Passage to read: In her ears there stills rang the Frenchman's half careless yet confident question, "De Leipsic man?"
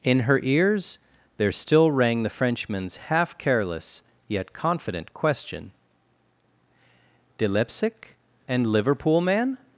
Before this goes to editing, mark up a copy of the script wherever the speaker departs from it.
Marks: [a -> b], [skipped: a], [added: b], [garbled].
In her ears there [stills -> still] rang the Frenchman's half careless yet confident question, "De Leipsic [added: and Liverpool] man?"